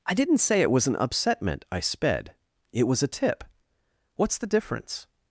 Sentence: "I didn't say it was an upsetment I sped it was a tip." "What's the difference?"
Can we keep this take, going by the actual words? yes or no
yes